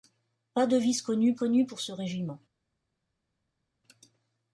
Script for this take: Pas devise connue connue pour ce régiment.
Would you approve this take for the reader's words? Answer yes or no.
yes